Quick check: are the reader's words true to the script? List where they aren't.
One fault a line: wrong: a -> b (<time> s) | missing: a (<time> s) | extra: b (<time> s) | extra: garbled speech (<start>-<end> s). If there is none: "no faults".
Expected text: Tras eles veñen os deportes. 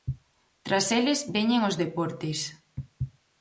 no faults